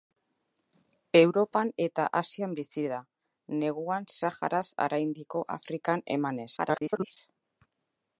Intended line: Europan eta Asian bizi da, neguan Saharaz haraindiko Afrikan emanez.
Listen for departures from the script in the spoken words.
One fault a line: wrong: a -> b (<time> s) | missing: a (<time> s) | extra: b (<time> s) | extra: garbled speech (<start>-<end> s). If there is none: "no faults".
extra: garbled speech (6.6-7.2 s)